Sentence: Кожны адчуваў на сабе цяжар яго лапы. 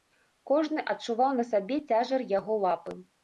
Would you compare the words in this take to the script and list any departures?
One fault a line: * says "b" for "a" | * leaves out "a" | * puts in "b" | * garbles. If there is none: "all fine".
all fine